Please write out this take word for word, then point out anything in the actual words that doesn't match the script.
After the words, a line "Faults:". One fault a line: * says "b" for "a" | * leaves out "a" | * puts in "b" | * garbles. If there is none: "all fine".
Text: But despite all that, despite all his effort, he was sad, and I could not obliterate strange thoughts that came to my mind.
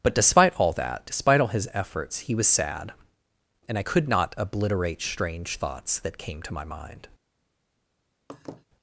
But despite all that, despite all his efforts, he was sad, and I could not obliterate strange thoughts that came to my mind.
Faults:
* says "efforts" for "effort"